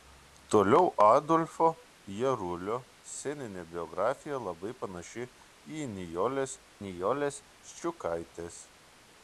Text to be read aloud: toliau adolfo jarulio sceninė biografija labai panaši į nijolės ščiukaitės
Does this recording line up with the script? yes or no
no